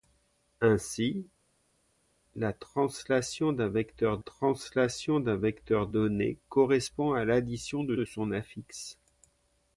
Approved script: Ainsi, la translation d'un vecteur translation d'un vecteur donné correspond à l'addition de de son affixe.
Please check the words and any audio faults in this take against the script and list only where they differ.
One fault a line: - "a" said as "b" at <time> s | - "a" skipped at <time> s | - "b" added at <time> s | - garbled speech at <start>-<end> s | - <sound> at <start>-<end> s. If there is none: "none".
none